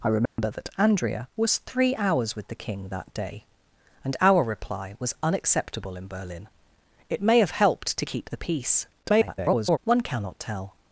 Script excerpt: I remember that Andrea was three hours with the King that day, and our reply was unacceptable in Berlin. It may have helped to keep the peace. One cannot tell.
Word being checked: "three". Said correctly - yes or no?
yes